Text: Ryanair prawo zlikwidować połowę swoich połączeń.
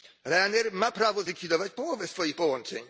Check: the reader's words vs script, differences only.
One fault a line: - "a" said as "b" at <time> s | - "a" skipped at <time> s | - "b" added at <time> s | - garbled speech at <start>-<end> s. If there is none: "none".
- "ma" added at 0.7 s